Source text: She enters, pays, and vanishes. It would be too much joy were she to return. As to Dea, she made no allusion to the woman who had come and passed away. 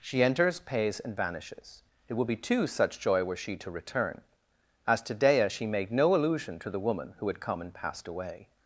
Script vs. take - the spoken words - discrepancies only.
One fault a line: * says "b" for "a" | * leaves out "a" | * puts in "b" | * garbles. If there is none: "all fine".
* says "such" for "much"